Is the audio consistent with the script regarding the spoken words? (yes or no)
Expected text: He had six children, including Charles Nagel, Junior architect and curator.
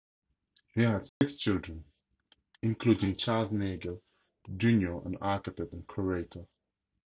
no